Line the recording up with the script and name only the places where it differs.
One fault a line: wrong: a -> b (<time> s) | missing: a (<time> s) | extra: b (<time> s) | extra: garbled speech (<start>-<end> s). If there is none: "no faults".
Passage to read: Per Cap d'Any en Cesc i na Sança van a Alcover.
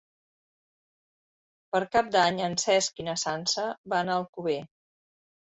no faults